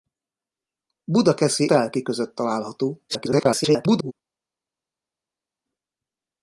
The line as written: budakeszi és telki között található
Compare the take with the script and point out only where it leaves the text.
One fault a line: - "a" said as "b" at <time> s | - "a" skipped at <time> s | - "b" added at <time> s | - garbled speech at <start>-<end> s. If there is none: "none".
- "és" skipped at 1.7 s
- garbled speech at 3.1-4.1 s